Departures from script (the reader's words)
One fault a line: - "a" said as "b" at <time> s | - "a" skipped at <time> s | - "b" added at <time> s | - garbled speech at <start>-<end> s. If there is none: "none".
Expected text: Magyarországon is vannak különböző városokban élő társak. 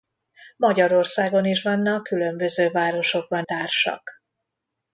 - "élő" skipped at 3.5 s